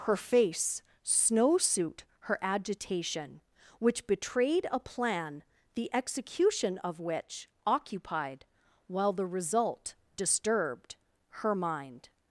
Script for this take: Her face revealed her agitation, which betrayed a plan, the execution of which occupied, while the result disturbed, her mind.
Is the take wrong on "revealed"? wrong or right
wrong